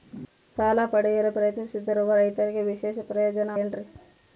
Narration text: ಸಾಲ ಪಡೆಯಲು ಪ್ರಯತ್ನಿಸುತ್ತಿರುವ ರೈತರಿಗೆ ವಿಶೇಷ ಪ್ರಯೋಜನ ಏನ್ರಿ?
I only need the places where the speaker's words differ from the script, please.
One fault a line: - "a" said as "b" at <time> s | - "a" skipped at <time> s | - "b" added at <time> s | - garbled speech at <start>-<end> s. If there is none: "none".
none